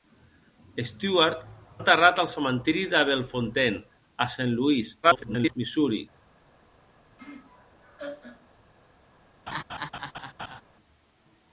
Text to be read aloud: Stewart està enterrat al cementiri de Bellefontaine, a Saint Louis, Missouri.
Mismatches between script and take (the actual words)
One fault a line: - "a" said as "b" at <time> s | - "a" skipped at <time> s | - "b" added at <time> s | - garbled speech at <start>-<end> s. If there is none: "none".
- "està" skipped at 1.4 s
- garbled speech at 5.0-5.5 s